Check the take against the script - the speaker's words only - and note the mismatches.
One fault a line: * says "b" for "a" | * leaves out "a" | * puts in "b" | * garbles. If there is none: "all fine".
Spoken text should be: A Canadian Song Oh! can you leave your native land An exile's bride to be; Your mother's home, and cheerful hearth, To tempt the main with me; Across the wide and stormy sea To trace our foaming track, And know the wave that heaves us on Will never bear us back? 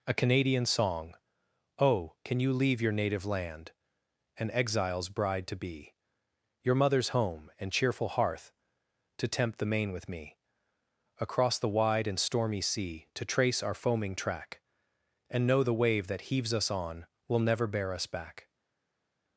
all fine